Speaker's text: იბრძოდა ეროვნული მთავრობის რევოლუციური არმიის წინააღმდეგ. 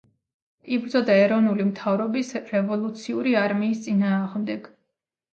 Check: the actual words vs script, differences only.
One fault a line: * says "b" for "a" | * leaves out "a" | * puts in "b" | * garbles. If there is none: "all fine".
all fine